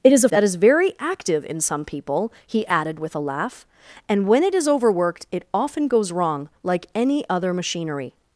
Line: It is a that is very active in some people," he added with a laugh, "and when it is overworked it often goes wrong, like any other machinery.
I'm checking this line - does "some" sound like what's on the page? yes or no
yes